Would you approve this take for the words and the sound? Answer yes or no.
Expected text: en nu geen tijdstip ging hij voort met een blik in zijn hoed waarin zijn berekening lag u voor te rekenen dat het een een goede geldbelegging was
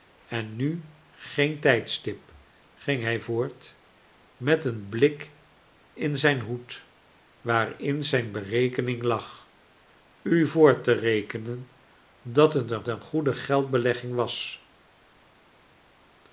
yes